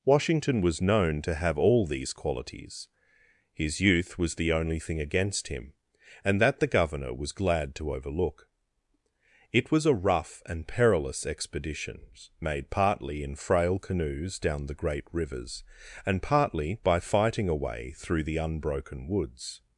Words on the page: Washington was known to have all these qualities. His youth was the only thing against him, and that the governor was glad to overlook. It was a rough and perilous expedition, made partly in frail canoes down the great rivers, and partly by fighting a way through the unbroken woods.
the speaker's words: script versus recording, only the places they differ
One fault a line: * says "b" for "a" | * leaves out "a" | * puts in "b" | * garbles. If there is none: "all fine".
all fine